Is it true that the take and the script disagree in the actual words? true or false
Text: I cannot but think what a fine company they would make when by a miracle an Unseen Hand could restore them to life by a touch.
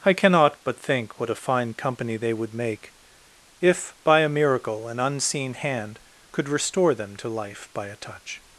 true